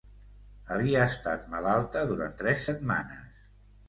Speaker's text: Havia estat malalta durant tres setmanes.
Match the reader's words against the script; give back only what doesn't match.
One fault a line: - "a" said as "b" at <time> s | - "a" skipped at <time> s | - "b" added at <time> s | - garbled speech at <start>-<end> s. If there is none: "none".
none